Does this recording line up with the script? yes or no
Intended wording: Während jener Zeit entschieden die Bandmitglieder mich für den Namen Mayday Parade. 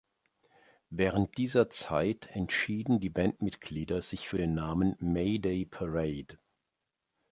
no